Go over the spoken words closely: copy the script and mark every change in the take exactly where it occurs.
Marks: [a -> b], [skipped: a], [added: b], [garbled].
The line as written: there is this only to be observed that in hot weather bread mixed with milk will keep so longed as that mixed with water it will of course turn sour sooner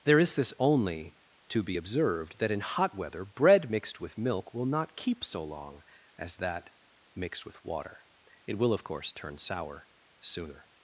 there is this only to be observed that in hot weather bread mixed with milk will [added: not] keep so [longed -> long] as that mixed with water it will of course turn sour sooner